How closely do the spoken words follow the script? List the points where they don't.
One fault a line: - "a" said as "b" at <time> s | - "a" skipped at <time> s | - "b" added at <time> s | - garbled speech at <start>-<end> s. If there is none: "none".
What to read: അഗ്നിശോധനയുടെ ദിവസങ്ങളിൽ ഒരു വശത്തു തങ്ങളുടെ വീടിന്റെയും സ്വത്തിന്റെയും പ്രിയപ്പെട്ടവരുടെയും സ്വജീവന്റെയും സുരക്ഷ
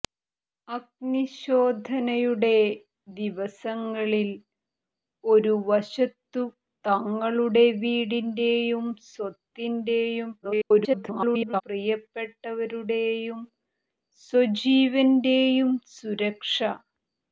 - garbled speech at 10.4-11.6 s